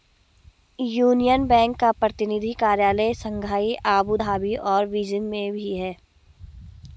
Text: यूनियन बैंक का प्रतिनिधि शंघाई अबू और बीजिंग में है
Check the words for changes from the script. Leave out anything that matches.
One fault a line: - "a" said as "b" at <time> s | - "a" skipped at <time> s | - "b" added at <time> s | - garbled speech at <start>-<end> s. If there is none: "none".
- "कार्यालय" added at 2.6 s
- "धाबी" added at 4.1 s
- "भी" added at 5.5 s